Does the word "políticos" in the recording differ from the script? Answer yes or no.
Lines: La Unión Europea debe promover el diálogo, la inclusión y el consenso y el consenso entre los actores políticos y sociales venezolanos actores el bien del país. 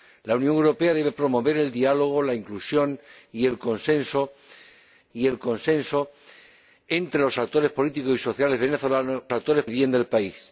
no